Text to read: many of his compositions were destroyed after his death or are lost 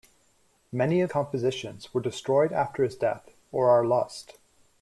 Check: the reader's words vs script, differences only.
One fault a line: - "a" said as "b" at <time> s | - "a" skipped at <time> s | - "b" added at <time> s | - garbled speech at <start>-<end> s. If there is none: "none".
- "his" skipped at 1.1 s